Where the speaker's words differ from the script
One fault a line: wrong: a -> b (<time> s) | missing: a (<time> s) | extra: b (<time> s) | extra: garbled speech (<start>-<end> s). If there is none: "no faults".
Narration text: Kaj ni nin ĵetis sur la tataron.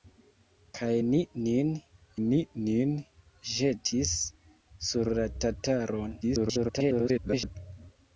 extra: ni nin (2.3 s)
extra: garbled speech (6.2-7.6 s)